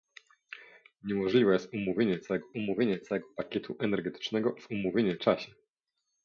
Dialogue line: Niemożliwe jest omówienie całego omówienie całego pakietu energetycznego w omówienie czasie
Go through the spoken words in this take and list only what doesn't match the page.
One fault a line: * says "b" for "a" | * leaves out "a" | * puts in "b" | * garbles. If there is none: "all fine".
all fine